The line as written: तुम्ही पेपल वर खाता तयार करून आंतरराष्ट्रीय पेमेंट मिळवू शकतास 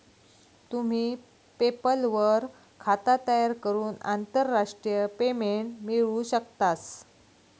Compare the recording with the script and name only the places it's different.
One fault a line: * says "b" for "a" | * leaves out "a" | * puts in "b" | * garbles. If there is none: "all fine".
all fine